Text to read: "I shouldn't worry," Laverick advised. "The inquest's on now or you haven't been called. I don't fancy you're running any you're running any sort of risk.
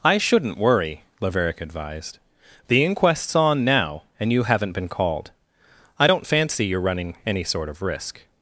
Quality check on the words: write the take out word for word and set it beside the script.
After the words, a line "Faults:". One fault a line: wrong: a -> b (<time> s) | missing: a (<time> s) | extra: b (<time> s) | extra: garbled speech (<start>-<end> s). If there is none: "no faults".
"I shouldn't worry," Laverick advised. "The inquest's on now and you haven't been called. I don't fancy you're running any sort of risk.
Faults:
wrong: or -> and (4.2 s)
missing: you're running any (7.4 s)